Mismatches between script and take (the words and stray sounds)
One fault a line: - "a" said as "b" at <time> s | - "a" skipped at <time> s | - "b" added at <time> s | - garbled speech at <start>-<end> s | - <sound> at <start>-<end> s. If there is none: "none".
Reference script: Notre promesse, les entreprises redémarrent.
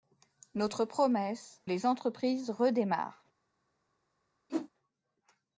- whoosh at 4.5-4.7 s